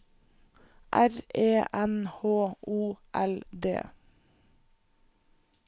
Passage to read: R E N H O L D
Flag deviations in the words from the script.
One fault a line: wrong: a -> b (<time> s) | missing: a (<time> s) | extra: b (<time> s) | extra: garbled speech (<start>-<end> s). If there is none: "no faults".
no faults